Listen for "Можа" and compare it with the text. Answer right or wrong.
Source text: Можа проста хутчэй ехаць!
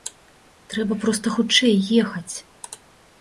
wrong